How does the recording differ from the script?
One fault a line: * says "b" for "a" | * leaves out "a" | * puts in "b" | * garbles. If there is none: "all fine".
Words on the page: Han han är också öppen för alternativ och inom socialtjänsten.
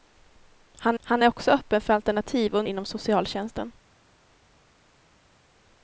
all fine